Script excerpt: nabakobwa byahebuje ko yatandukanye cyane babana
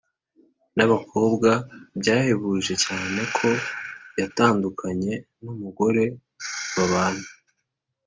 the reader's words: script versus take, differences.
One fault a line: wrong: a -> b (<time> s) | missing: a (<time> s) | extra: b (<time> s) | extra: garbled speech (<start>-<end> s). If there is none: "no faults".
extra: cyane (2.8 s)
wrong: cyane -> numugore (5.4 s)